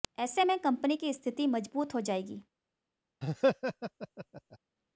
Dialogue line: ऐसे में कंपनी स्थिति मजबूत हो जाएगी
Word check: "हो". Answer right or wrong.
right